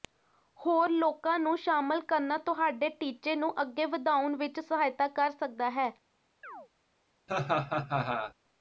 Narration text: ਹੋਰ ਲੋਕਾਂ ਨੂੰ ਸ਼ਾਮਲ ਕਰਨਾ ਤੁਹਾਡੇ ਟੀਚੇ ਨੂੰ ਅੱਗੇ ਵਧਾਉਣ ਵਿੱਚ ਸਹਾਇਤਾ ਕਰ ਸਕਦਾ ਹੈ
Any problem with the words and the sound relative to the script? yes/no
yes